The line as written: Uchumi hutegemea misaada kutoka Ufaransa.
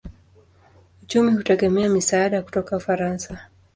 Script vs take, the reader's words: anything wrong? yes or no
no